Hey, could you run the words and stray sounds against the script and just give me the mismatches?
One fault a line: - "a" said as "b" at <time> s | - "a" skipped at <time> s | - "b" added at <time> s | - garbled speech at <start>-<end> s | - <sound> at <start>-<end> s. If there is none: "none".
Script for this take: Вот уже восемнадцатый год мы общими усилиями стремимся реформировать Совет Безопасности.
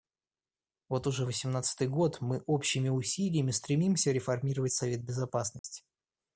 - dropout at 5.6-5.6 s